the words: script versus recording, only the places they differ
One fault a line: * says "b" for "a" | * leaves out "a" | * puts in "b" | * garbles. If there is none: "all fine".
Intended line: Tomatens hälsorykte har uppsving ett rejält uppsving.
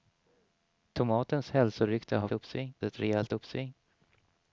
all fine